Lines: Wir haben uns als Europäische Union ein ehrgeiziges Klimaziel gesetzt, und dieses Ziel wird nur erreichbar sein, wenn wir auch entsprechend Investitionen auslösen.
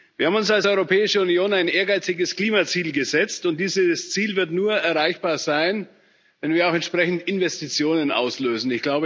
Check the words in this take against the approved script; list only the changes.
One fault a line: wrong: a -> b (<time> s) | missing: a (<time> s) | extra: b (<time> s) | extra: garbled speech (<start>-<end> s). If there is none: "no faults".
no faults